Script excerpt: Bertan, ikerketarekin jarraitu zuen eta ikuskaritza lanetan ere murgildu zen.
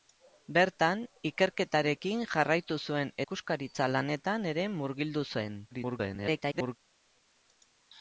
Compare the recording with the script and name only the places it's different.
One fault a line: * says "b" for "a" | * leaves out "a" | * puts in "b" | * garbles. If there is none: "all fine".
* leaves out "eta"
* garbles